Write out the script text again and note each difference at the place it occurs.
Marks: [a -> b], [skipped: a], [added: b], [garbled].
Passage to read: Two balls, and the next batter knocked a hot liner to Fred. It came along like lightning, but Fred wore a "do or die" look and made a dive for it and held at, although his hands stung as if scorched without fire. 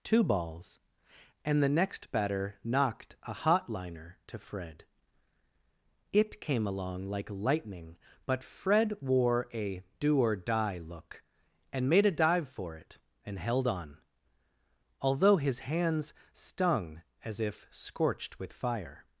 Two balls, and the next batter knocked a hot liner to Fred. It came along like lightning, but Fred wore a "do or die" look and made a dive for it and held [at, -> on] although his hands stung as if scorched [without -> with] fire.